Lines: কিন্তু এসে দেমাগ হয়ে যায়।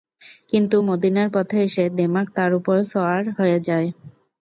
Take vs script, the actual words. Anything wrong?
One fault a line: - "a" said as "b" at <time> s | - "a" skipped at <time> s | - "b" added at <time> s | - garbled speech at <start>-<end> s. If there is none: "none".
- "মদীনার পথে" added at 0.9 s
- "তার উপর সওয়ার" added at 2.4 s